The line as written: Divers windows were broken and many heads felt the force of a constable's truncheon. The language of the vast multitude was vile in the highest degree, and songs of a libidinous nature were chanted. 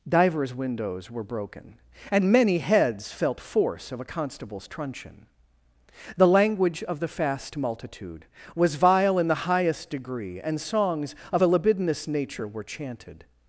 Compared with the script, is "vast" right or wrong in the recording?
wrong